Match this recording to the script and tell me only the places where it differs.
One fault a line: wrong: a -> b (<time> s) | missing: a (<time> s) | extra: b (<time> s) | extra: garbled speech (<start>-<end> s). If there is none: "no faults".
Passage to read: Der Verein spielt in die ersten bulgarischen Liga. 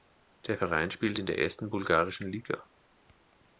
wrong: die -> der (1.2 s)